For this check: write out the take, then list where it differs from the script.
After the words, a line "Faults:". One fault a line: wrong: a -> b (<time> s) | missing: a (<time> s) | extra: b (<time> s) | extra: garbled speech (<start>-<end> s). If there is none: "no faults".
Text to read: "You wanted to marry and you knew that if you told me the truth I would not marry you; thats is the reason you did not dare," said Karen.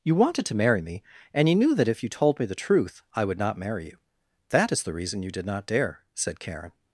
"You wanted to marry me and you knew that if you told me the truth I would not marry you; that is the reason you did not dare," said Karen.
Faults:
extra: me (0.8 s)
wrong: thats -> that (4.5 s)